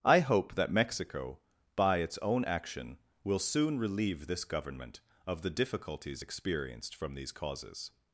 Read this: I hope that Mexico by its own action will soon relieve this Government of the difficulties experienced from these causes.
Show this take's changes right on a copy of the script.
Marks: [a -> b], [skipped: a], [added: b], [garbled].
I hope that Mexico by its own action will soon relieve this Government of the difficulties experienced from these causes.